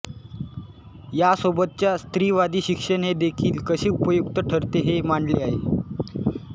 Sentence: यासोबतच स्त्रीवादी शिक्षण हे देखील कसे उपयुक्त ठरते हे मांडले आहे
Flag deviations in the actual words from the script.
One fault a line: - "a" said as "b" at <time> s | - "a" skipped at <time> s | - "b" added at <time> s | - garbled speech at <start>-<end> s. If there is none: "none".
none